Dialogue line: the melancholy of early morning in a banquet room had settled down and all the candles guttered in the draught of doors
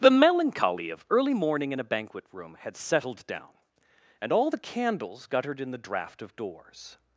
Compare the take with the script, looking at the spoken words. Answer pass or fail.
pass